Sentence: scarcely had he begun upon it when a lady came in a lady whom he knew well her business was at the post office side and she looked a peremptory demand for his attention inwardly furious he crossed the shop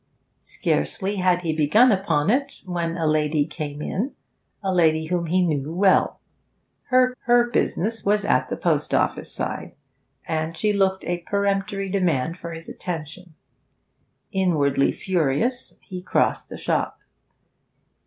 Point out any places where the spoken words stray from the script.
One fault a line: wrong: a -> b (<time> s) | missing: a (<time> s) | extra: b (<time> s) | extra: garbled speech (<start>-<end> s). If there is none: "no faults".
extra: her (7.2 s)